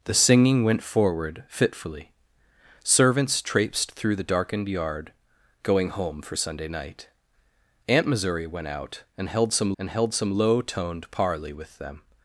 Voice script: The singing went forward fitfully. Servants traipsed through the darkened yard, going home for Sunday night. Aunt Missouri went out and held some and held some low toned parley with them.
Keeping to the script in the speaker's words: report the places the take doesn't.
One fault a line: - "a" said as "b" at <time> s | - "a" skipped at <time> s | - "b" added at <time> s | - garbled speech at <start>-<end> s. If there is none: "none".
none